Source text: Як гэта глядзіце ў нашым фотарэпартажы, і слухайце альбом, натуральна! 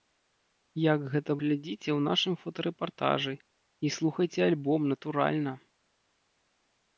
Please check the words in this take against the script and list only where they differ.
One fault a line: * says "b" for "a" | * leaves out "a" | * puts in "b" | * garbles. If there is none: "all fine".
all fine